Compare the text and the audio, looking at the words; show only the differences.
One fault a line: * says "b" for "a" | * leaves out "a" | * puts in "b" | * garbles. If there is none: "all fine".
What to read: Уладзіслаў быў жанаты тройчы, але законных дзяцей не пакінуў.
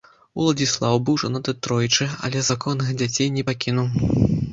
all fine